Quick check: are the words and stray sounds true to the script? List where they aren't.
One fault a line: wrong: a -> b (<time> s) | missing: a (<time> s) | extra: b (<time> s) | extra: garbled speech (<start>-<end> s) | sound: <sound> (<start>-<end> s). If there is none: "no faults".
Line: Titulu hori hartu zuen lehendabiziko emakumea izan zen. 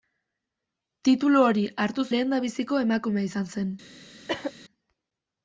missing: zuen (2.0 s)
sound: cough (4.3-4.5 s)